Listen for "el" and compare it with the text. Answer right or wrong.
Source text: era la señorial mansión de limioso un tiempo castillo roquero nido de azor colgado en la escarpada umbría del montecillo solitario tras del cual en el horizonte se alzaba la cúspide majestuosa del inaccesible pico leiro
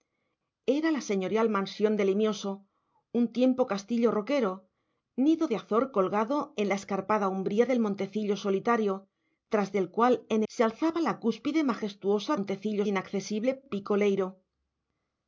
wrong